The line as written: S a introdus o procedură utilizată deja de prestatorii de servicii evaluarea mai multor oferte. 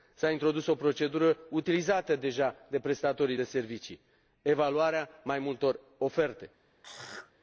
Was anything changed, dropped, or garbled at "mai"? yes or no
no